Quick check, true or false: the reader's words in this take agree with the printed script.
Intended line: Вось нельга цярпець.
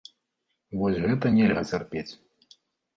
false